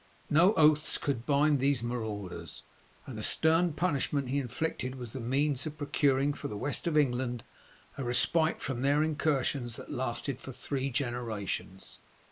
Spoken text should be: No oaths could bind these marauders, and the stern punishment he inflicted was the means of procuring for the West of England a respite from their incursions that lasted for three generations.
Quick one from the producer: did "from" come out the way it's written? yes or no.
yes